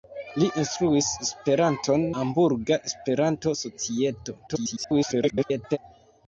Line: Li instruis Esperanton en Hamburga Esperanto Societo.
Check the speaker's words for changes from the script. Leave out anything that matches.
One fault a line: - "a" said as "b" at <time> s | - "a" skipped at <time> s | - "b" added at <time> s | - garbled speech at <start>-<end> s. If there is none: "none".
- "en" skipped at 2.1 s
- garbled speech at 4.5-5.8 s